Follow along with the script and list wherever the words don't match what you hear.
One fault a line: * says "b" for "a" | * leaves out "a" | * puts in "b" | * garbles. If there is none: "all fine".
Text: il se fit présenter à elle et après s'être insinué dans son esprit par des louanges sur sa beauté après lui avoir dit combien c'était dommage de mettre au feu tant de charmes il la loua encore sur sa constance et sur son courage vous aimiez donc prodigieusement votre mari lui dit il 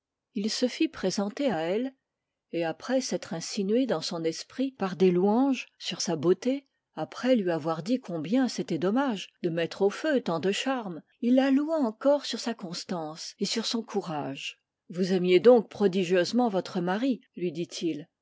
all fine